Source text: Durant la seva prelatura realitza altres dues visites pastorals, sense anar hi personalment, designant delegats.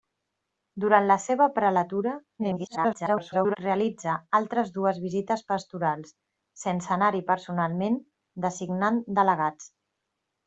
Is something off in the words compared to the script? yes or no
yes